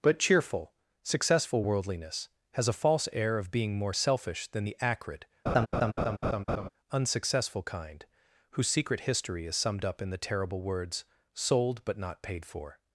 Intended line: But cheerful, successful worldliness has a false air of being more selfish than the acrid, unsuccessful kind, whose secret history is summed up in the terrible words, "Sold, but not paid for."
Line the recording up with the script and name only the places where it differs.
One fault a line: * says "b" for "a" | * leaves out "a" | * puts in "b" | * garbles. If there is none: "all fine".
all fine